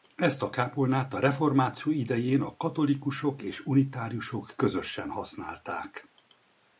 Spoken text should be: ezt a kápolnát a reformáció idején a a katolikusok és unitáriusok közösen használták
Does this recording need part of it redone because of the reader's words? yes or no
yes